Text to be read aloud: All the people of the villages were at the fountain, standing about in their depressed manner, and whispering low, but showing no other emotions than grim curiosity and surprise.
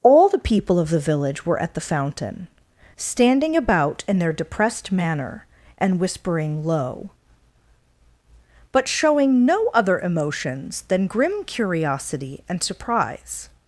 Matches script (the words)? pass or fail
fail